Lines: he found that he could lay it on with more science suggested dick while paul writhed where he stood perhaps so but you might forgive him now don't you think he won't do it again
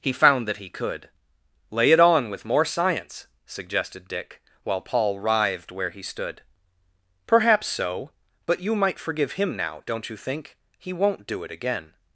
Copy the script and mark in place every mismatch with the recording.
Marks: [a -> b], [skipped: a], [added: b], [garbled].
he found that he could lay it on with more science suggested dick while paul writhed where he stood perhaps so but you might forgive him now don't you think he won't do it again